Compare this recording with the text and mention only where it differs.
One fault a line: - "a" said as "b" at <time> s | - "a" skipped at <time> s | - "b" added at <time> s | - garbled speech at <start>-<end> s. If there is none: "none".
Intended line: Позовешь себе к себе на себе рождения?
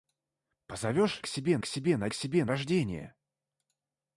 none